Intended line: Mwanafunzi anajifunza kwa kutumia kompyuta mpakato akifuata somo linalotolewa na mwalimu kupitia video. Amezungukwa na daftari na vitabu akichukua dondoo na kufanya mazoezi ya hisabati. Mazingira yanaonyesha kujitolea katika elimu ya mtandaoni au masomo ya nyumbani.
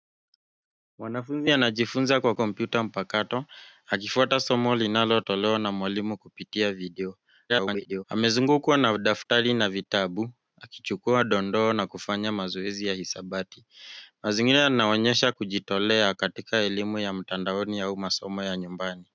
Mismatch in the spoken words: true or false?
true